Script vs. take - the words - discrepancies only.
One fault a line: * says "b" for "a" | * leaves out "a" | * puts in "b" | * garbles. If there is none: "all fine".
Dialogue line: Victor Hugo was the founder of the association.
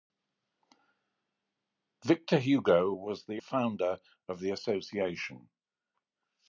all fine